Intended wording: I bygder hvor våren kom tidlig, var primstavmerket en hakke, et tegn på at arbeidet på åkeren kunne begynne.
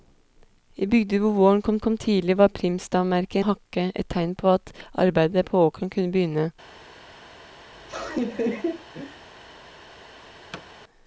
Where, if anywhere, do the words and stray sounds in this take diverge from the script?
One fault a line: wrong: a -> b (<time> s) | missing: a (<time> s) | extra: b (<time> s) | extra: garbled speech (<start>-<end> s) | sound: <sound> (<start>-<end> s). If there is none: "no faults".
extra: kom (1.8 s)
missing: en (3.4 s)
sound: laugh (7.7-9.3 s)
sound: thud (10.5-10.7 s)